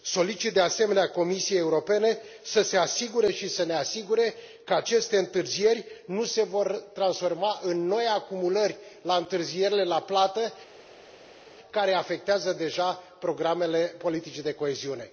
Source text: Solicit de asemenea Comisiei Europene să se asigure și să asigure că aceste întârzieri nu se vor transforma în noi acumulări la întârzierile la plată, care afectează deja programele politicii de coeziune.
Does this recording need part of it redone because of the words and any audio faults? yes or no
yes